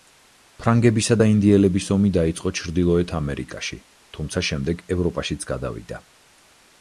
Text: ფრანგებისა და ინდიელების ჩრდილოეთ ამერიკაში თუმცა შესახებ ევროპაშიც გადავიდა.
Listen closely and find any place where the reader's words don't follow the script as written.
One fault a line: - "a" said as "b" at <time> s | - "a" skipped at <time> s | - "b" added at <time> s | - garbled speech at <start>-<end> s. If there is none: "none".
- "ომი დაიწყო" added at 1.9 s
- "შესახებ" said as "შემდეგ" at 4.5 s